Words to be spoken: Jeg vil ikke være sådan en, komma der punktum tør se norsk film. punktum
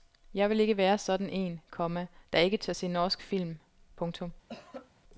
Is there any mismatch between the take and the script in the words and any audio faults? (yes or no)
yes